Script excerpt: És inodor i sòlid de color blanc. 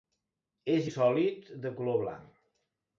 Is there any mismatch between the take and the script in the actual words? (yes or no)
yes